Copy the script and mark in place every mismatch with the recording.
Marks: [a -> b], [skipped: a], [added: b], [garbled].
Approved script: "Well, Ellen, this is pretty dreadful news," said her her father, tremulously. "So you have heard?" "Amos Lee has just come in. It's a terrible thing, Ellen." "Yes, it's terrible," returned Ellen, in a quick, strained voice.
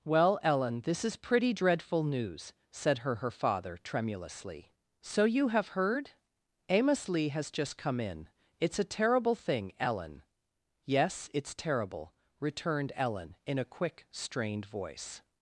"Well, Ellen, this is pretty dreadful news," said her her father, tremulously. "So you have heard?" "Amos Lee has just come in. It's a terrible thing, Ellen." "Yes, it's terrible," returned Ellen, in a quick, strained voice.